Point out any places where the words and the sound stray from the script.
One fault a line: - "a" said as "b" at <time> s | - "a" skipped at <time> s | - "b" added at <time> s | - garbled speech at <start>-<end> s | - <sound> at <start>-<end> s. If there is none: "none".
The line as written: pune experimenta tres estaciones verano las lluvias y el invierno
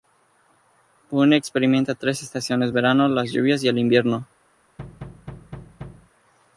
- thud at 4.8-6.1 s